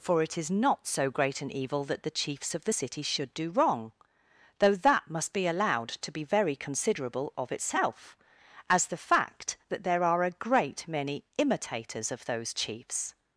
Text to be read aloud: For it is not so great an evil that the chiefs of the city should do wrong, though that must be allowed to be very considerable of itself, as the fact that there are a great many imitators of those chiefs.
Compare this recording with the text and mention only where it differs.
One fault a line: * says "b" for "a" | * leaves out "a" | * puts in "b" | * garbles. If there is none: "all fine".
all fine